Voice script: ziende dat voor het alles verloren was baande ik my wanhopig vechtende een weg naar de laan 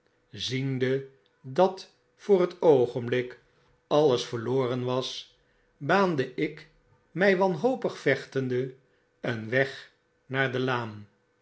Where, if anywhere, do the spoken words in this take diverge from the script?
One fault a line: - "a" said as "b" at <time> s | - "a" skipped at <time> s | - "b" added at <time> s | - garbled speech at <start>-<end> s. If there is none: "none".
- "oogenblik" added at 2.6 s